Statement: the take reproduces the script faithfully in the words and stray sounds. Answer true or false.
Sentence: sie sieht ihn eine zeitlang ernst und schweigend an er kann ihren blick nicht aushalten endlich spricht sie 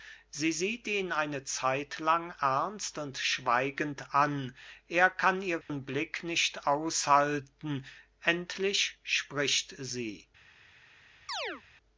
false